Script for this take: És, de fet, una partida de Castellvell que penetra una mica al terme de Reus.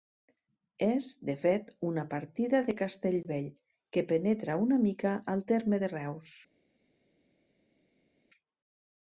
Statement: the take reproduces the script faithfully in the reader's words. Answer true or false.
true